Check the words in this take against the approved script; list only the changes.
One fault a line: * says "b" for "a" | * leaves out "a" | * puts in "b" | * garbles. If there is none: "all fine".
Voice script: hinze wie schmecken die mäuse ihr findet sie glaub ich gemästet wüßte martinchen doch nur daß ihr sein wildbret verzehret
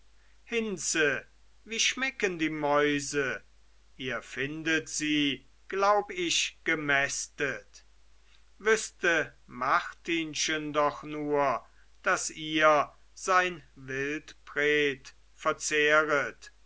all fine